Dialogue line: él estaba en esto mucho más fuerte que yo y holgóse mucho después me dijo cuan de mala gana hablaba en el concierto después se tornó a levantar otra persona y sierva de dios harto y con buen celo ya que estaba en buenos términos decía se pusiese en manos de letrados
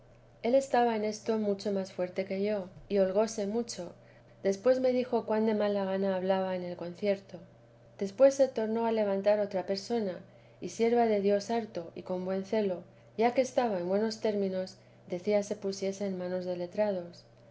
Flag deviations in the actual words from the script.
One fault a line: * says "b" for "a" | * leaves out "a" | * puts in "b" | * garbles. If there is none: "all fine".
all fine